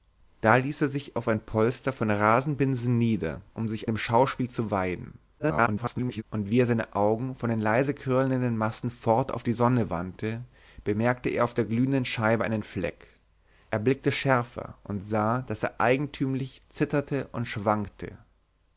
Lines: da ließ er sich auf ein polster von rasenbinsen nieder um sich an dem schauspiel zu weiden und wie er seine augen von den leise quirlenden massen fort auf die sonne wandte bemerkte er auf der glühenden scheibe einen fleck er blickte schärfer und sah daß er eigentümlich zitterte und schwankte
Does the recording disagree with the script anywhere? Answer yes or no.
yes